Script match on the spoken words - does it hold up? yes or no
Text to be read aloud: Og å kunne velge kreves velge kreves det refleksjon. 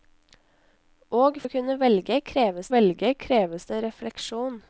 yes